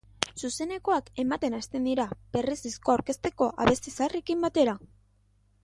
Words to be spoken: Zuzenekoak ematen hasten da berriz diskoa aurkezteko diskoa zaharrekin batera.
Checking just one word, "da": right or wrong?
wrong